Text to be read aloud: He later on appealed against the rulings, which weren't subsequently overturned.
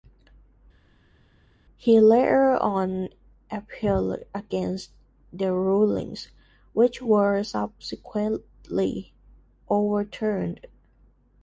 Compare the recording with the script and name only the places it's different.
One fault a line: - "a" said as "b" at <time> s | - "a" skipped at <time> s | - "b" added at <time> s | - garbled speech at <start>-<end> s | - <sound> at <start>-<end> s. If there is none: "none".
- "weren't" said as "were" at 7.0 s